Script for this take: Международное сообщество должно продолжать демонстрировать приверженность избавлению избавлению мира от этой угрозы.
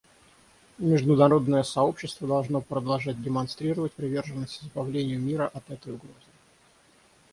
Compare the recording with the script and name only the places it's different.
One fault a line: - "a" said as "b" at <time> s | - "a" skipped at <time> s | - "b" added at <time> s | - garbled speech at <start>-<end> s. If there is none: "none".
- "избавлению" skipped at 5.2 s